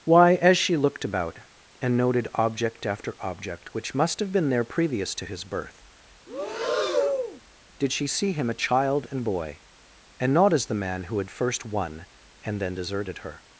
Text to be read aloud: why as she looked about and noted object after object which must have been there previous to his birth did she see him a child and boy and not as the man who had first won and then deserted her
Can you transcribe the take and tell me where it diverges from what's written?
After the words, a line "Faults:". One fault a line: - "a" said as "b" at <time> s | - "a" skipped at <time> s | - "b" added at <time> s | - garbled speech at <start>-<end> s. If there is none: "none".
why as she looked about and noted object after object which must have been there previous to his birth did she see him a child and boy and not as the man who had first won and then deserted her
Faults:
none